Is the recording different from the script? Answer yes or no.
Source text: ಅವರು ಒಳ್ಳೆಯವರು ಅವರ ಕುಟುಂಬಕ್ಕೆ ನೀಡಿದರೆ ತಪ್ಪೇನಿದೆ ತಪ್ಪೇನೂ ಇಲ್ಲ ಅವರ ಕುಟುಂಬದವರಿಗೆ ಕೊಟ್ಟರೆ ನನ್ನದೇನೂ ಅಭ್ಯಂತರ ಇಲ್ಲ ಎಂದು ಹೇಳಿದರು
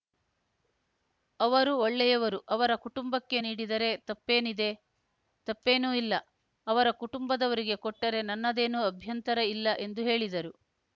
no